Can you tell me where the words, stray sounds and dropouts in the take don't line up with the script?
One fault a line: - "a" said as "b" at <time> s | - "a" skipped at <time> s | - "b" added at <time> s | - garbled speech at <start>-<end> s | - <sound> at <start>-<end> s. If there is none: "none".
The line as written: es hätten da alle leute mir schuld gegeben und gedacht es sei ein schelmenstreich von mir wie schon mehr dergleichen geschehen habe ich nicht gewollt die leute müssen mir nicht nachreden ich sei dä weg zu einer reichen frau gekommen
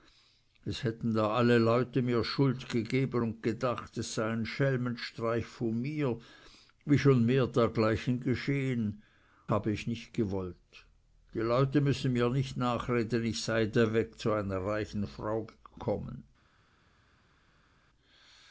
none